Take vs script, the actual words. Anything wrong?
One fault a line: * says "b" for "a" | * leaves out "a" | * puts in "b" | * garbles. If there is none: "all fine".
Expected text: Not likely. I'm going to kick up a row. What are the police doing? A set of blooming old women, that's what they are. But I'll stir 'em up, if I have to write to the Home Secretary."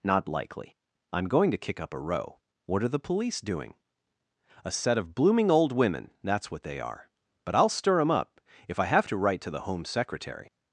all fine